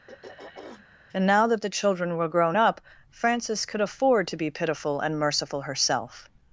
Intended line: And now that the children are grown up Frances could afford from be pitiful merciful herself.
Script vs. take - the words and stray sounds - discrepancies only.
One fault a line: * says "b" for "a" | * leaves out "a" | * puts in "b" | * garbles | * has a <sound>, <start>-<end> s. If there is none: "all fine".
* has a throat clearing, 0.1-0.9 s
* says "were" for "are"
* says "to" for "from"
* puts in "and"